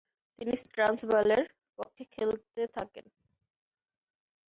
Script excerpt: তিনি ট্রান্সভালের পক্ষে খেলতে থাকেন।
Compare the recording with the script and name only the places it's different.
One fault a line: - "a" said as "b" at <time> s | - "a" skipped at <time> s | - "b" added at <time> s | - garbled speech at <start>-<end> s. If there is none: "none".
none